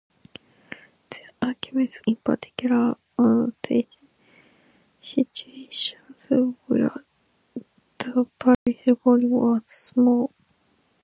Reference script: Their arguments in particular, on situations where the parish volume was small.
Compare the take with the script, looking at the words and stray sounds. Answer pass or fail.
fail